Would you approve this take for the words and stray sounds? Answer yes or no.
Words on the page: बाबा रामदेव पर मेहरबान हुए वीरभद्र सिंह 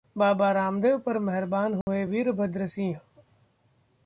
no